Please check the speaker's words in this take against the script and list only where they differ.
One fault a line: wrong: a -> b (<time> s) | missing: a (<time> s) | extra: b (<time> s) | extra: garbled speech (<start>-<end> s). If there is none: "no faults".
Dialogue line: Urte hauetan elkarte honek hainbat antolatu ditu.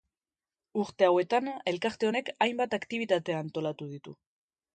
extra: aktibitate (2.8 s)